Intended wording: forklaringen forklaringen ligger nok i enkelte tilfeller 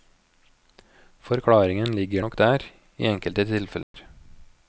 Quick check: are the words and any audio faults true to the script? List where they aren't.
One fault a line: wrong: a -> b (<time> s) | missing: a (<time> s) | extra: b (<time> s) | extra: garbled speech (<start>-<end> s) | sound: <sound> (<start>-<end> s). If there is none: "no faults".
missing: forklaringen (1.9 s)
extra: der (2.4 s)
sound: dropout (3.8-3.9 s)